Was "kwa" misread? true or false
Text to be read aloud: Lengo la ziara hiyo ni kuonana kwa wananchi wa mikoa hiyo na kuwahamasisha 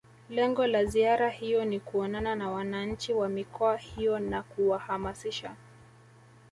true